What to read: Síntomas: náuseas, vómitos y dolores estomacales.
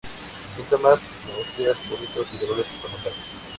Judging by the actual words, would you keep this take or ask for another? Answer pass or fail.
pass